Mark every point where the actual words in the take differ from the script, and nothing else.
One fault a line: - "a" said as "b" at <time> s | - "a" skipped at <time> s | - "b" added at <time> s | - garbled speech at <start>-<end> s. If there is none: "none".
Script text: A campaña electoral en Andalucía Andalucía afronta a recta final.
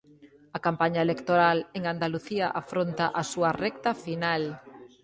- "Andalucía" skipped at 2.5 s
- "súa" added at 3.3 s